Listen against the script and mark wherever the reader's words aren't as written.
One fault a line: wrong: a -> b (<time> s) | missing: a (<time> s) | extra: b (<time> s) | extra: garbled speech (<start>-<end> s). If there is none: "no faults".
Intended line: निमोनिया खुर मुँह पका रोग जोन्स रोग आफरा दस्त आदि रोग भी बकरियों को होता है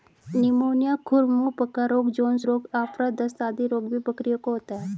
no faults